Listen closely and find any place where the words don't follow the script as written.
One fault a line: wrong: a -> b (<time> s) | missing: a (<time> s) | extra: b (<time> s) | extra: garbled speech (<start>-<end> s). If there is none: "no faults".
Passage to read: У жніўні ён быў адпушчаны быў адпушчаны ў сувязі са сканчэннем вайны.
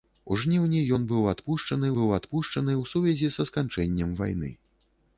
no faults